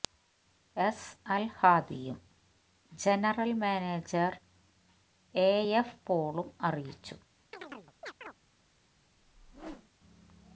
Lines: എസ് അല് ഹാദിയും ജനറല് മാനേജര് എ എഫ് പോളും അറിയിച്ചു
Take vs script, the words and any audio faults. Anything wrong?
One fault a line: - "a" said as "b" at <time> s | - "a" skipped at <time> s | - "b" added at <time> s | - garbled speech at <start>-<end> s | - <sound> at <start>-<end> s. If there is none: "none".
- chirp at 7.5-8.3 s
- whoosh at 9.2-9.9 s